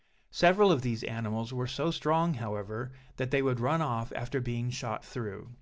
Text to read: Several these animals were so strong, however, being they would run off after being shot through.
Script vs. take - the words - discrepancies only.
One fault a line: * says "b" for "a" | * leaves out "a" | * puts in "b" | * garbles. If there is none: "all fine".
* puts in "of"
* says "that" for "being"